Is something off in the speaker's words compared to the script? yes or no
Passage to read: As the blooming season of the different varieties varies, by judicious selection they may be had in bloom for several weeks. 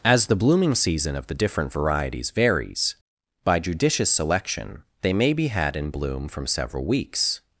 yes